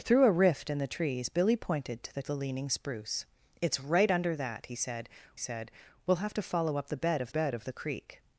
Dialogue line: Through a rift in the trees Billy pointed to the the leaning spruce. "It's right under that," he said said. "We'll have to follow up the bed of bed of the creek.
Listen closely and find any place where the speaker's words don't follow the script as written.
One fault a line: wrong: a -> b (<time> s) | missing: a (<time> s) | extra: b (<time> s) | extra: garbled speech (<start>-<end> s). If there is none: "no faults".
no faults